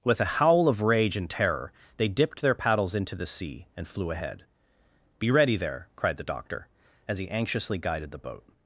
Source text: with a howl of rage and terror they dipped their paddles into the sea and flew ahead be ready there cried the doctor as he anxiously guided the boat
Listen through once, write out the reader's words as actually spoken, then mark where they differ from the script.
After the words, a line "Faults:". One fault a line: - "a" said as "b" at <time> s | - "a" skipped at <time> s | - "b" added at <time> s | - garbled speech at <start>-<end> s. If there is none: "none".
with a howl of rage and terror they dipped their paddles into the sea and flew ahead be ready there cried the doctor as he anxiously guided the boat
Faults:
none